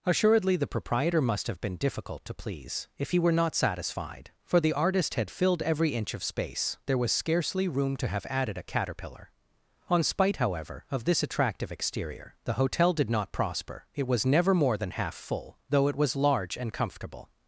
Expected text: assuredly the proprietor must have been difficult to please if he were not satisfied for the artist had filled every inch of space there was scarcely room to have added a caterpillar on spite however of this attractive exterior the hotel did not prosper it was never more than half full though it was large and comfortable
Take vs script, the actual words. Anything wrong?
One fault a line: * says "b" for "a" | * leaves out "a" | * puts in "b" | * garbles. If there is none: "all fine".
all fine